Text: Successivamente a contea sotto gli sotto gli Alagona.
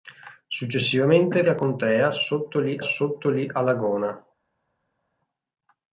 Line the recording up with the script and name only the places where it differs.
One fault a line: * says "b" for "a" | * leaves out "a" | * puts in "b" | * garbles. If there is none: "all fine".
all fine